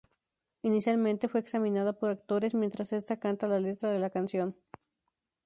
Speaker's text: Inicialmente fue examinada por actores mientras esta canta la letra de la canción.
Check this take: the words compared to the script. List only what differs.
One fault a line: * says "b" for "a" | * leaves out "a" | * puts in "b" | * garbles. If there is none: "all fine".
all fine